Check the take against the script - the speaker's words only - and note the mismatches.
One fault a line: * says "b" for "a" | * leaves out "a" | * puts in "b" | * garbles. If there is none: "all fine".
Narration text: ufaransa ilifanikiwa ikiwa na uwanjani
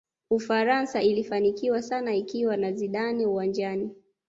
* puts in "sana"
* puts in "zidane"